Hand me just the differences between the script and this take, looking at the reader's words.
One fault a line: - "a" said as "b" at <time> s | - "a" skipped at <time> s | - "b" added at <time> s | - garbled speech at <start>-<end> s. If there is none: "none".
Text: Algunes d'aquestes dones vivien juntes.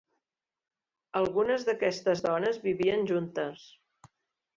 none